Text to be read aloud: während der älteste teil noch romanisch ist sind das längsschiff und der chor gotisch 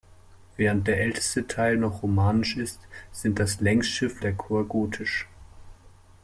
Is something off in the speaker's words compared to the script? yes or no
yes